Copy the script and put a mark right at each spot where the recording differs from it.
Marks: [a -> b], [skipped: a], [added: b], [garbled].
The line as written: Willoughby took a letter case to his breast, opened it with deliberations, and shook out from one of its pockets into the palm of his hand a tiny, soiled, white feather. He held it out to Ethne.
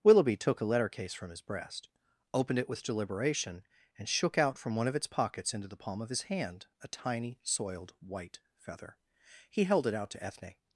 Willoughby took a letter case [to -> from] his breast, opened it with [deliberations, -> deliberation] and shook out from one of its pockets into the palm of his hand a tiny, soiled, white feather. He held it out to Ethne.